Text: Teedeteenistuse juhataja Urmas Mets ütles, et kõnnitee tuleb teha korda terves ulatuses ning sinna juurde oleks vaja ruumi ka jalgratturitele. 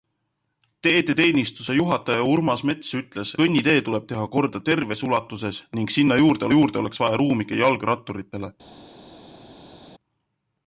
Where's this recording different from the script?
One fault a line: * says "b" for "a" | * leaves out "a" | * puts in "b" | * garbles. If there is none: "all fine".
* leaves out "et"
* puts in "juurde"